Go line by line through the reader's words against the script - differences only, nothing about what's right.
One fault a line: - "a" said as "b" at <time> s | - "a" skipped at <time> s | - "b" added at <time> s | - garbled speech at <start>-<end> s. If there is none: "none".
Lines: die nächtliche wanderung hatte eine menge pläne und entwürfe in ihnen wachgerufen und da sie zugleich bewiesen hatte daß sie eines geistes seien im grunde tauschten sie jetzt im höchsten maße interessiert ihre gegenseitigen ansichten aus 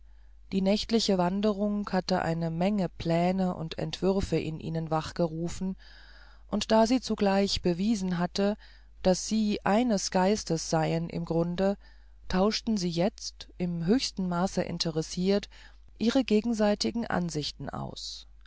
none